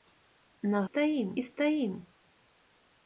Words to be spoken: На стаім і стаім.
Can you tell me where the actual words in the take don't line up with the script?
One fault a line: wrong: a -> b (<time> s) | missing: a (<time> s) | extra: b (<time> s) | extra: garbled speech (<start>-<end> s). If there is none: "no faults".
no faults